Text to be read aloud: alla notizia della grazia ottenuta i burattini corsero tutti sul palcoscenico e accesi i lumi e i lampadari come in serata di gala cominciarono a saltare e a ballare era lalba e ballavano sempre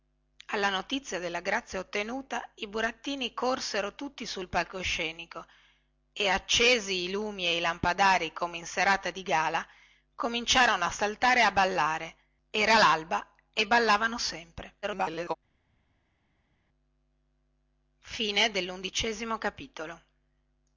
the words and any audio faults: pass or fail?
fail